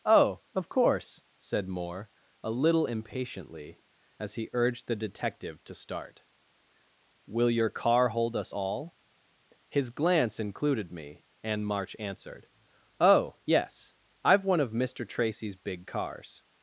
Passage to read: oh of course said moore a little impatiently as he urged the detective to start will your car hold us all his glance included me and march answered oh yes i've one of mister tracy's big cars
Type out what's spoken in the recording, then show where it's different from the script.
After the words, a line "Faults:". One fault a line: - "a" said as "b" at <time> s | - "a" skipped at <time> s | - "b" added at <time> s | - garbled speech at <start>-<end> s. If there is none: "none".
oh of course said moore a little impatiently as he urged the detective to start will your car hold us all his glance included me and march answered oh yes i've one of mister tracy's big cars
Faults:
none